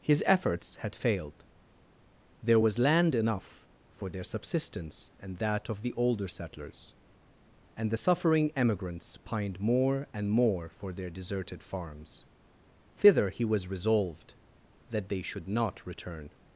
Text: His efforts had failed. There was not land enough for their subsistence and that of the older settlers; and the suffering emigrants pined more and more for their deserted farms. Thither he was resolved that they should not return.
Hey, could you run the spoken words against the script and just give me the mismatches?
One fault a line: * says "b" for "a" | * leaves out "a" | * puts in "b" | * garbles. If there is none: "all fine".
* leaves out "not"